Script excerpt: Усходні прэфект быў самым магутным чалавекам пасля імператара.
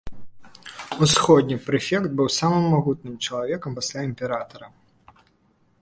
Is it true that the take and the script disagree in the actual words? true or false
false